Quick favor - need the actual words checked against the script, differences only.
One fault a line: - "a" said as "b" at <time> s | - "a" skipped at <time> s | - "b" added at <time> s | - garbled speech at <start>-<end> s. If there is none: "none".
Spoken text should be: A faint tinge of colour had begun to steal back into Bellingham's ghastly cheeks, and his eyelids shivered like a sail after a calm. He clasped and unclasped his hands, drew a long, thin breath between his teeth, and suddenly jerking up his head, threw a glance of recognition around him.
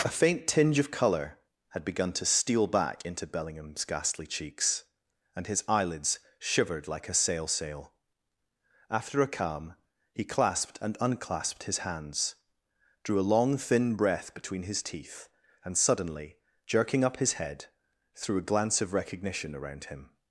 - "sail" added at 7.5 s